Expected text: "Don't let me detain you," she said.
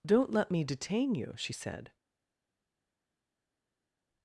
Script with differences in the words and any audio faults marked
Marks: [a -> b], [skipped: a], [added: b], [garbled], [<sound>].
"Don't let me detain you," she said.